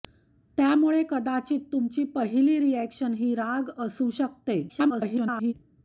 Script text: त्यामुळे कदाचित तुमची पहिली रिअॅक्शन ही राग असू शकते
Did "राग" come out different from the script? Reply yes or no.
no